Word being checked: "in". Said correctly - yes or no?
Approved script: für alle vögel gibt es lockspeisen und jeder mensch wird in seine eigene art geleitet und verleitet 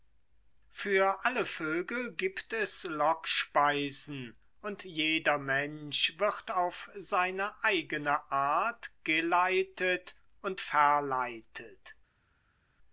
no